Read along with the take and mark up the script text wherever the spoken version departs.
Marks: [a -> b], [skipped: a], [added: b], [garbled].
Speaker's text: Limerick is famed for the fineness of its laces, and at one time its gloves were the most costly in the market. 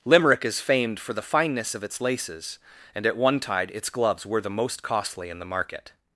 Limerick is famed for the fineness of its laces, and at one [time -> tide] its gloves were the most costly in the market.